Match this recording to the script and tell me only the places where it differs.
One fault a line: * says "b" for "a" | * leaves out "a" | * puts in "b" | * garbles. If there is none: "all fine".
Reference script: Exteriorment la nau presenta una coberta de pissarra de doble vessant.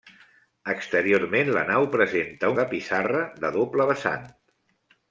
* leaves out "una coberta"